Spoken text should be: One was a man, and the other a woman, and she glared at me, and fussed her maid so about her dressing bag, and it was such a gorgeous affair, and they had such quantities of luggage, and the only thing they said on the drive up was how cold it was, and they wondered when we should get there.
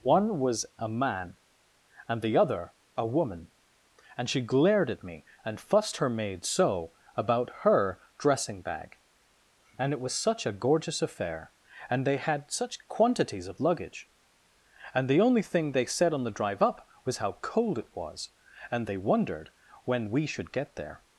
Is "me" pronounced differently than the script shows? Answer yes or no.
no